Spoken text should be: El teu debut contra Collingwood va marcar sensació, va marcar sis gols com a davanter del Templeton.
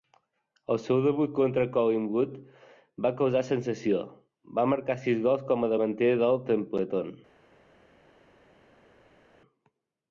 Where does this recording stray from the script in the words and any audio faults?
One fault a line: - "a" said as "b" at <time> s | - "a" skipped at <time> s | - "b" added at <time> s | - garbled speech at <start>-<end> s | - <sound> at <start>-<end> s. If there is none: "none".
- "teu" said as "seu" at 0.8 s
- "marcar" said as "causar" at 3.2 s